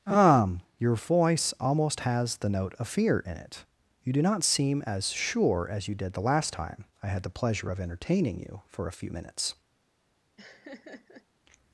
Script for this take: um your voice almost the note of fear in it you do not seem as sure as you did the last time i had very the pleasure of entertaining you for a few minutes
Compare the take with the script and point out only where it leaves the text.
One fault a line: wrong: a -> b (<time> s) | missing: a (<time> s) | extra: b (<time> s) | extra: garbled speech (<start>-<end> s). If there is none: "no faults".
extra: has (2.0 s)
missing: very (7.2 s)